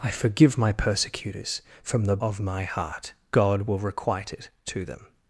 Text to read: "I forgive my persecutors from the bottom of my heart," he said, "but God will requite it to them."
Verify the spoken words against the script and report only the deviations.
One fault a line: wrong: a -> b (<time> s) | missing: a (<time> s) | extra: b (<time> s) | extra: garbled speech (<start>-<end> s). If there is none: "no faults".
missing: bottom (2.2 s)
missing: he said but (3.1 s)